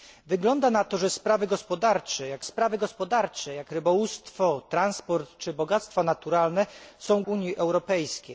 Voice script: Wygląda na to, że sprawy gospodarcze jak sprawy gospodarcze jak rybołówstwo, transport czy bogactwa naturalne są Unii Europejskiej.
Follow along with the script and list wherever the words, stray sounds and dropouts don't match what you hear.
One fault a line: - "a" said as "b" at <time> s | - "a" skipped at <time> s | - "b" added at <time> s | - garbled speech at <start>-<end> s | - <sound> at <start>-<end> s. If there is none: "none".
none